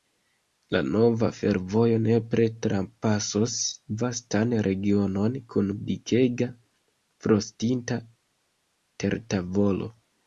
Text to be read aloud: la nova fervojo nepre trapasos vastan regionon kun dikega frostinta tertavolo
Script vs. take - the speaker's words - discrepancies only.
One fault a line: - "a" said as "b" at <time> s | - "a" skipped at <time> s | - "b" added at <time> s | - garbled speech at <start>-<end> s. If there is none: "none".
none